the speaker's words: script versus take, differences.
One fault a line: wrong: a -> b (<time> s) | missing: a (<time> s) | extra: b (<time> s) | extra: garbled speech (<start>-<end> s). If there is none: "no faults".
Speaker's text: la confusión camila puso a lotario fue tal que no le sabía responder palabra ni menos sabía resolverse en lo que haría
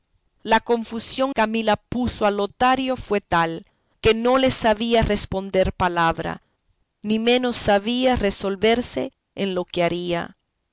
no faults